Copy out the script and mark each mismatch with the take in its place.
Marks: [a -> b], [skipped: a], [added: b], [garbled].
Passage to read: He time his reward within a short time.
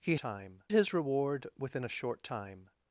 He time his reward within a short time.